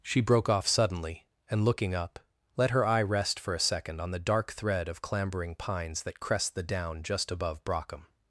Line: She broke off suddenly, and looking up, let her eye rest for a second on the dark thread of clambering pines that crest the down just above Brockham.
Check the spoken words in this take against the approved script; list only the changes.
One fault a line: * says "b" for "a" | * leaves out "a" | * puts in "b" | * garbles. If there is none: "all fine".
all fine